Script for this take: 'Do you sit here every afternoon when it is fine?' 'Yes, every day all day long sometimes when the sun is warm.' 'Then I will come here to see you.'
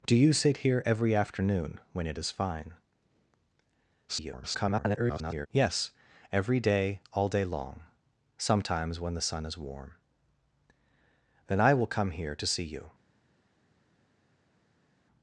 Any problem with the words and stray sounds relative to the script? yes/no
yes